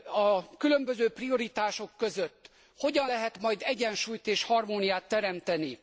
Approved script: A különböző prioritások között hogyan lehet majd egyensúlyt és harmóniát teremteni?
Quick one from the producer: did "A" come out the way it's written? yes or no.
yes